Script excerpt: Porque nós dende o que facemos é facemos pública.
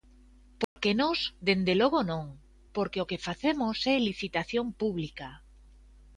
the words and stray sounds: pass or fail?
fail